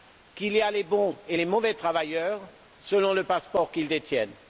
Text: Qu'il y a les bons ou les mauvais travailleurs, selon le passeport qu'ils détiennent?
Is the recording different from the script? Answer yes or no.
yes